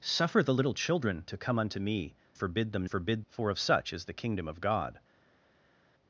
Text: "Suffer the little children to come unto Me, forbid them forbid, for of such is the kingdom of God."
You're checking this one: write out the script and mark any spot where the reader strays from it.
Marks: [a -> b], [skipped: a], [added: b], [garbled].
"Suffer the little children to come unto Me, forbid them forbid, for of such is the kingdom of God."